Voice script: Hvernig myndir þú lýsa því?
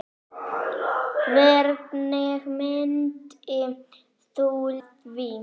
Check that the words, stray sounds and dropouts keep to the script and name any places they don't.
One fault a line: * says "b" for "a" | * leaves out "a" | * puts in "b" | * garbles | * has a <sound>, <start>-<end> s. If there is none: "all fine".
* leaves out "lýsa"